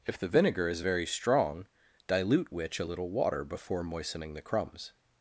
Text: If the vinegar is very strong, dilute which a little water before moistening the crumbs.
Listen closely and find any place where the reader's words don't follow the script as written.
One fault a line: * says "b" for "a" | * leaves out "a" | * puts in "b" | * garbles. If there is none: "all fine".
all fine